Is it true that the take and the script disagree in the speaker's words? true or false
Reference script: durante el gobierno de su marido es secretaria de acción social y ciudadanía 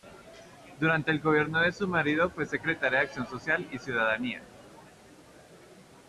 true